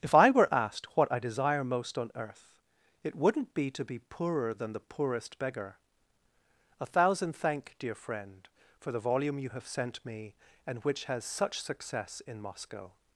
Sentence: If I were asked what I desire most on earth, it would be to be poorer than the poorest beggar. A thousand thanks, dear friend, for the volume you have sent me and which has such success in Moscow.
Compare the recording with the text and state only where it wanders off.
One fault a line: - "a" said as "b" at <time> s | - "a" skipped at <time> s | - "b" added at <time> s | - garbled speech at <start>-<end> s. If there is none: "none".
- "would" said as "wouldn't" at 3.1 s
- "thanks" said as "thank" at 7.3 s